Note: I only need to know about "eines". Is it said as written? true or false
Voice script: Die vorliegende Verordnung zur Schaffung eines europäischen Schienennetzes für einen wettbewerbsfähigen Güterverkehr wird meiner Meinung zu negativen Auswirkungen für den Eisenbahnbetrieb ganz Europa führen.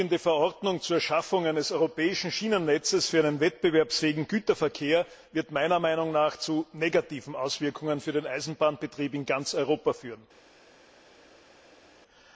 true